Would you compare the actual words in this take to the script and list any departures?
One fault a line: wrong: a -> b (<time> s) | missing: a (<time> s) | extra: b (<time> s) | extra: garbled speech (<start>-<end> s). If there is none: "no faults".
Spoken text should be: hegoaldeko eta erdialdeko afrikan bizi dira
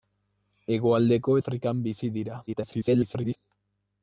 missing: eta erdialdeko (1.4 s)
extra: garbled speech (2.5-3.4 s)